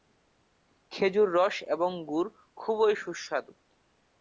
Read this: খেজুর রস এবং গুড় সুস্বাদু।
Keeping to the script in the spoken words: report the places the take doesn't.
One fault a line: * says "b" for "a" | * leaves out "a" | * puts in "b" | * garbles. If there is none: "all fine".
* puts in "খুবই"